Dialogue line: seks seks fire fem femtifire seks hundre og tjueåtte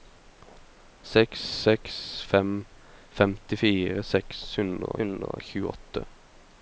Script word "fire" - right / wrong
wrong